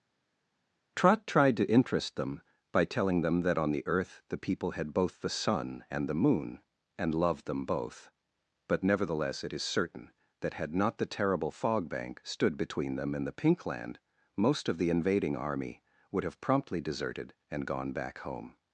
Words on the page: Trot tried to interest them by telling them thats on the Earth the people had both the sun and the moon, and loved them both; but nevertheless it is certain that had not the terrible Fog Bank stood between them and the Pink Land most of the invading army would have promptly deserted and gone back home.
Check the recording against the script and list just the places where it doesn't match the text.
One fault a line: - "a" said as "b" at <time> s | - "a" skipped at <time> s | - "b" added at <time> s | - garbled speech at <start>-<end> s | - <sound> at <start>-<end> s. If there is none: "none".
- "thats" said as "that" at 3.4 s